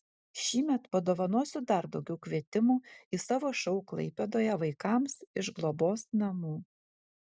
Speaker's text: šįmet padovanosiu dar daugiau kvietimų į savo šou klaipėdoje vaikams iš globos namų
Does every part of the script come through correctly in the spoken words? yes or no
yes